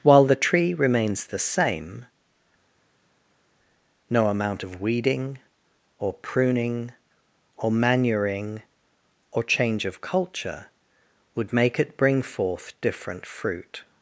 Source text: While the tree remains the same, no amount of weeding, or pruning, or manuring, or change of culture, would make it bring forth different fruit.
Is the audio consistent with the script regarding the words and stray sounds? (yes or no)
yes